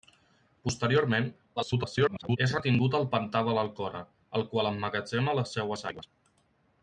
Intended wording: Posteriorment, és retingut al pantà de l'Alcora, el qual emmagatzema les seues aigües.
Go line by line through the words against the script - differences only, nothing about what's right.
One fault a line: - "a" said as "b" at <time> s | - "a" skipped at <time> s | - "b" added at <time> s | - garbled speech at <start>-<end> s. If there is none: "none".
- garbled speech at 1.6-2.4 s